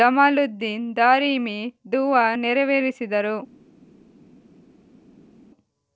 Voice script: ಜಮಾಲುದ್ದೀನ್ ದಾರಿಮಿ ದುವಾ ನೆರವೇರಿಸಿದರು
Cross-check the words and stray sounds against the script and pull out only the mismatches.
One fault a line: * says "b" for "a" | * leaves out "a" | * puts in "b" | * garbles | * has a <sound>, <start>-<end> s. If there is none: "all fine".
all fine